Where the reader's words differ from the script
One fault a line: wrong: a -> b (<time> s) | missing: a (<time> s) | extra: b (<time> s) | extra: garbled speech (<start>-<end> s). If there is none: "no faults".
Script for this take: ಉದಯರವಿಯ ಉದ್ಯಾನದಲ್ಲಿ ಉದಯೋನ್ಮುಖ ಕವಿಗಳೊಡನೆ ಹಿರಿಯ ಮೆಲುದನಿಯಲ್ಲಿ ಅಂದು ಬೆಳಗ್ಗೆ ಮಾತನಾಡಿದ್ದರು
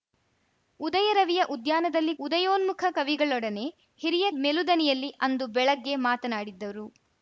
no faults